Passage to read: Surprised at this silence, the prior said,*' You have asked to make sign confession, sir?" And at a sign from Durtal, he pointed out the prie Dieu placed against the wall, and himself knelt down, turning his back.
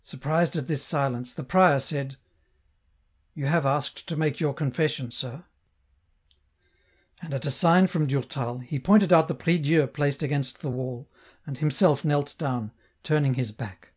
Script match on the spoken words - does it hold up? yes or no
no